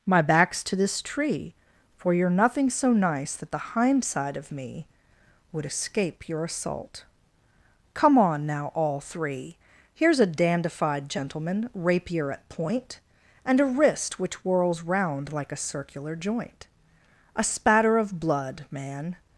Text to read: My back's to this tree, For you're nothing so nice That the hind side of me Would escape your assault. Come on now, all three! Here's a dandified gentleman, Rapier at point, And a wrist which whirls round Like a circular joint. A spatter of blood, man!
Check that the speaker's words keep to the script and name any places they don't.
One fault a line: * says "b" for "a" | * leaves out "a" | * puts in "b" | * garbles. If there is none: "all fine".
all fine